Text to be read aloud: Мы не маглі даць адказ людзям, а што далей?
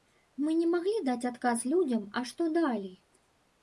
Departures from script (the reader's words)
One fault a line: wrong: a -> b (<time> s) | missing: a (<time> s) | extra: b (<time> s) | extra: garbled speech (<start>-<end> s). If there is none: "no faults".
no faults